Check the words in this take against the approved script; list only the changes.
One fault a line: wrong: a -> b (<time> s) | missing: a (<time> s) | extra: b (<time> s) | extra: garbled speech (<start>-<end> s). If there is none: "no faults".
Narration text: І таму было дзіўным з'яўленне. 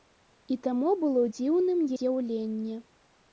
no faults